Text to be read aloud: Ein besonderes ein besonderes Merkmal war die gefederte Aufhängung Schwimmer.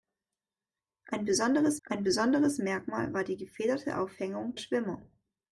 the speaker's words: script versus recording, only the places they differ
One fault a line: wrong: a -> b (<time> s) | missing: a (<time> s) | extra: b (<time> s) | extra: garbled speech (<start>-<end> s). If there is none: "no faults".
no faults